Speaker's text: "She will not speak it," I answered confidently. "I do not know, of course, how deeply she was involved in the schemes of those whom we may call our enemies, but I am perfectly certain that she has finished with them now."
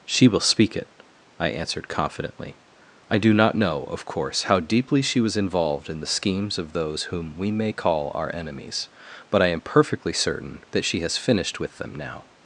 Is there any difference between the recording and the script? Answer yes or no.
yes